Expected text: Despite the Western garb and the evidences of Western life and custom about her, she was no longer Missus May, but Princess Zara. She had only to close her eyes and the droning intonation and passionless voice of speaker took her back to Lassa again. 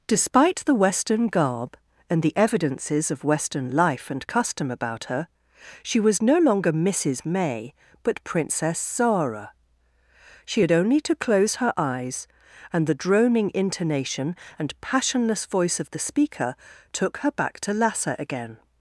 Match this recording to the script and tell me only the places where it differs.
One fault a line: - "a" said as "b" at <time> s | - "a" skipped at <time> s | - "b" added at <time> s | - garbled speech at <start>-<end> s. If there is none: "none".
- "the" added at 15.9 s